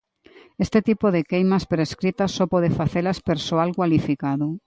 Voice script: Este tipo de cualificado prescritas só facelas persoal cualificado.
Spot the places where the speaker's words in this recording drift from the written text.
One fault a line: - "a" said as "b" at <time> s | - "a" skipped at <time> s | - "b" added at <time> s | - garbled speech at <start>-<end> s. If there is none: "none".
- "cualificado" said as "queimas" at 1.2 s
- "pode" added at 2.5 s